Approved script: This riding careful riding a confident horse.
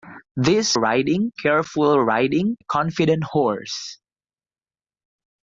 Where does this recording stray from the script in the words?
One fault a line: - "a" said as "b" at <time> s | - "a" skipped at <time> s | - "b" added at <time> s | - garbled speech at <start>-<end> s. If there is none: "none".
none